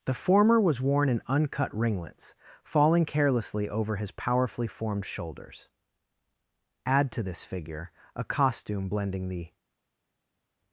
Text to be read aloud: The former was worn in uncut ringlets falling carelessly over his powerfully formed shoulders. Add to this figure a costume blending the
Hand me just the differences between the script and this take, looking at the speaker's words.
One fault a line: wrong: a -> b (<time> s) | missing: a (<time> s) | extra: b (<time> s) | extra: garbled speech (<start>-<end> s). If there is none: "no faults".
no faults